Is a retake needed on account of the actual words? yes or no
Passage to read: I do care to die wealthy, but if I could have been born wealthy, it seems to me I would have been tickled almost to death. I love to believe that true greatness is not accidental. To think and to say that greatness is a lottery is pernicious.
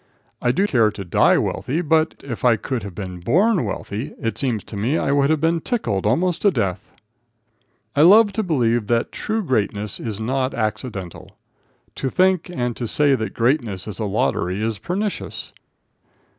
no